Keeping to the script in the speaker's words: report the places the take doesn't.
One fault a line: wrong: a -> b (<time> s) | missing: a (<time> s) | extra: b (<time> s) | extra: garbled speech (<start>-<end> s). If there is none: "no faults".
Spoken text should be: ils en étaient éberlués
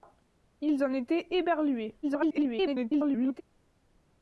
extra: garbled speech (2.0-3.4 s)